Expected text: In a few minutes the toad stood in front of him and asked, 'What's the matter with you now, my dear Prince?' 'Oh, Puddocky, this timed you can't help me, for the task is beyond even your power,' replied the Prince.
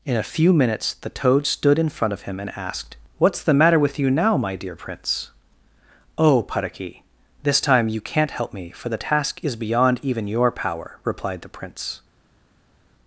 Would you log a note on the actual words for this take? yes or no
yes